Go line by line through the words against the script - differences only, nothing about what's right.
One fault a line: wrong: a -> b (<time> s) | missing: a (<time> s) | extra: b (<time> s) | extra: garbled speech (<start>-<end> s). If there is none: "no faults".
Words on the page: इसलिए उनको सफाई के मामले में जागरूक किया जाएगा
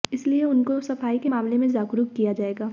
no faults